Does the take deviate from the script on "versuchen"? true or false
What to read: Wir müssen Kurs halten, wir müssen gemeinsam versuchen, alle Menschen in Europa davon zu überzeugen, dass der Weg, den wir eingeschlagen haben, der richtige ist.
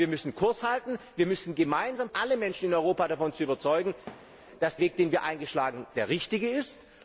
true